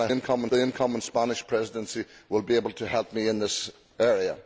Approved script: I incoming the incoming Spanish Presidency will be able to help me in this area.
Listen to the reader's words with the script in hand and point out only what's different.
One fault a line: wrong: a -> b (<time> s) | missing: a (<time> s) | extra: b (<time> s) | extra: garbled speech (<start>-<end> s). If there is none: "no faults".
no faults